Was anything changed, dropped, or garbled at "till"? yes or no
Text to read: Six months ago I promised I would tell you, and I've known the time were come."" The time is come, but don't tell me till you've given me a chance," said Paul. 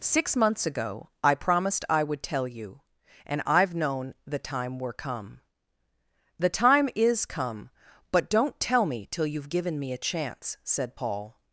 no